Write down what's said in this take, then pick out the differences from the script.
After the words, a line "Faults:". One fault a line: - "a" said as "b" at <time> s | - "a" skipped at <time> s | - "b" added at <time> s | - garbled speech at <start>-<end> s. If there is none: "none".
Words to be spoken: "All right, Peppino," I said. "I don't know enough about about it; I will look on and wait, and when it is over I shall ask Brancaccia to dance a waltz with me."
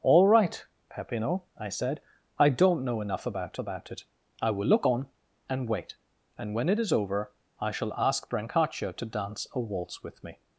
"All right, Peppino," I said. "I don't know enough about about it; I will look on and wait, and when it is over I shall ask Brancaccia to dance a waltz with me."
Faults:
none